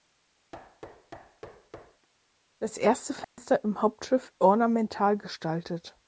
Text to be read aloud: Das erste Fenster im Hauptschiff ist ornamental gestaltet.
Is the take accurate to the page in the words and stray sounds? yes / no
no